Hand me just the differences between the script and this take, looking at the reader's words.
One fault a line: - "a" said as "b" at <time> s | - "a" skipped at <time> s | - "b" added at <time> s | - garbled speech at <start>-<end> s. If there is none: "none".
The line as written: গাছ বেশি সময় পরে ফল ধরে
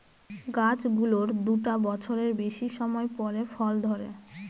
- "গুলোর দুটা বছরের" added at 1.0 s